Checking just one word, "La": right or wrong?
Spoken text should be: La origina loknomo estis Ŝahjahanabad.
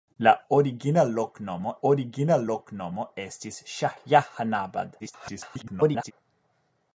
right